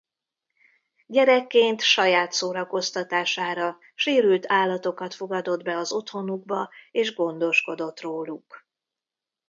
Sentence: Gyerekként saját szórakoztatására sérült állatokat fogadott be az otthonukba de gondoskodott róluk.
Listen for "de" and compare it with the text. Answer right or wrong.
wrong